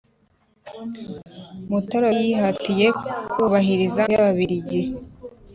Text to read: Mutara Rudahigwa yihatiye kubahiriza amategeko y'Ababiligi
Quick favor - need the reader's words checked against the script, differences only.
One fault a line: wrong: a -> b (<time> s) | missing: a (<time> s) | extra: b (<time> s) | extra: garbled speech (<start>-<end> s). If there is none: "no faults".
missing: Rudahigwa (2.1 s)
missing: amategeko (4.0 s)